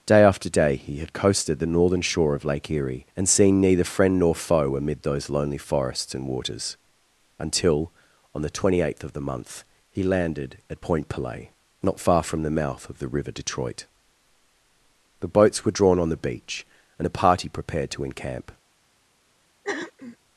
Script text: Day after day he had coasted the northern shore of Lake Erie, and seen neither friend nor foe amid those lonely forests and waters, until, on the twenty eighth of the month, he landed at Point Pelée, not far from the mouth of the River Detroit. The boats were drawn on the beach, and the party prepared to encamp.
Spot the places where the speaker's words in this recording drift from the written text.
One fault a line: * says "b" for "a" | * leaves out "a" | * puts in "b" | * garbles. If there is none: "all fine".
all fine